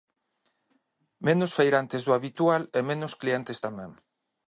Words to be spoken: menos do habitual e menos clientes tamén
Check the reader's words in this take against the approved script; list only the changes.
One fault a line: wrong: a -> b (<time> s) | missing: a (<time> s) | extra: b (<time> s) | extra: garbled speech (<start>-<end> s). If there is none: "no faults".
extra: feirantes (1.6 s)